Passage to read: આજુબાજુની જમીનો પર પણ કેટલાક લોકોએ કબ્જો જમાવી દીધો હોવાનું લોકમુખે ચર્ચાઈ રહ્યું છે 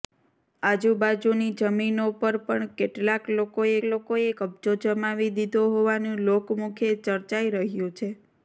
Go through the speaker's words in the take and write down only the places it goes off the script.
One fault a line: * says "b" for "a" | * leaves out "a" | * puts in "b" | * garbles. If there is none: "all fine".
* puts in "લોકોએ"